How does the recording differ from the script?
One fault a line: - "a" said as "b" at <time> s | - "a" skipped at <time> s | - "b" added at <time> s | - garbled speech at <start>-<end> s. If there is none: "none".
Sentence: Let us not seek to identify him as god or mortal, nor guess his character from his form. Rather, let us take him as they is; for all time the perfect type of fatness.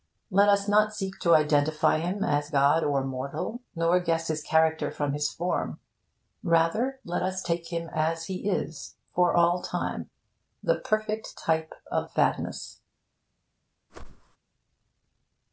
- "they" said as "he" at 8.2 s